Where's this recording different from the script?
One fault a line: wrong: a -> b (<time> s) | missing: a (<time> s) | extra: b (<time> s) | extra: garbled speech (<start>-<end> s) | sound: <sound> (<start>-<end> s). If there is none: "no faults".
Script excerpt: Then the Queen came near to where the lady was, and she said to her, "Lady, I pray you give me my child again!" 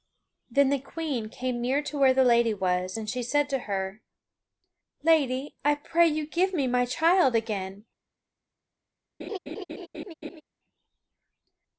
sound: laugh (9.2-10.4 s)